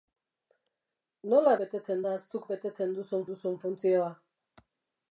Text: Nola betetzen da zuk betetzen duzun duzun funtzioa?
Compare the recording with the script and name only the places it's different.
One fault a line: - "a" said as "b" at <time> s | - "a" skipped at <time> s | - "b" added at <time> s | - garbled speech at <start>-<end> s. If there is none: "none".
none